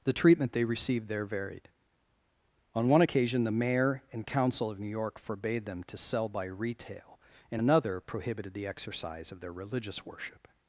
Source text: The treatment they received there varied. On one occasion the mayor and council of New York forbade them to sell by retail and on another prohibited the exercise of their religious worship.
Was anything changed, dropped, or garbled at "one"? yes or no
no